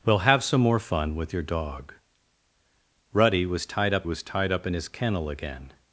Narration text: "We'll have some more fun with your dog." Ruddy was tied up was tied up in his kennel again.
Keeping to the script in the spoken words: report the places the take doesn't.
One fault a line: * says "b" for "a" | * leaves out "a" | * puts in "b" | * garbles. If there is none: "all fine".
all fine